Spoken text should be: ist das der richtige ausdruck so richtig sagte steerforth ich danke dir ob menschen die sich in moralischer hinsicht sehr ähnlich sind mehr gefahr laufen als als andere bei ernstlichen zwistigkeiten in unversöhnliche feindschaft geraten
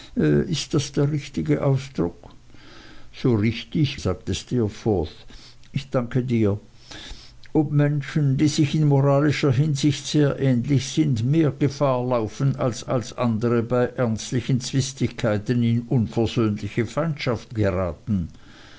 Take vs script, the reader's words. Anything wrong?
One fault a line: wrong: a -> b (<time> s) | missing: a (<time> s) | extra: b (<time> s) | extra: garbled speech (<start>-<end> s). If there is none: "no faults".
no faults